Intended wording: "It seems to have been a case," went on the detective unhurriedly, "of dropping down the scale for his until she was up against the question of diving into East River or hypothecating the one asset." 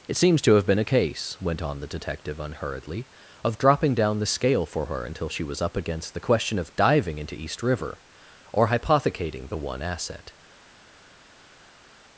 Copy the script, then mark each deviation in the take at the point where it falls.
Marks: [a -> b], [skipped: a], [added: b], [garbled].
"It seems to have been a case," went on the detective unhurriedly, "of dropping down the scale for [his -> her] until she was up against the question of diving into East River or hypothecating the one asset."